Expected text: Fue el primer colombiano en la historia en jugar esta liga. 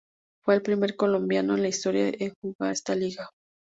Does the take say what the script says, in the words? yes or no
yes